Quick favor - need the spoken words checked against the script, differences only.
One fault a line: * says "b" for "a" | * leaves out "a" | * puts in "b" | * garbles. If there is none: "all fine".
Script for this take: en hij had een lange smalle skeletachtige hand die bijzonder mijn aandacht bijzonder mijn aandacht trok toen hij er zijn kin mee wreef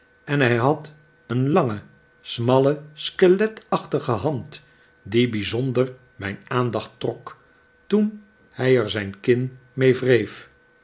* leaves out "bijzonder mijn aandacht"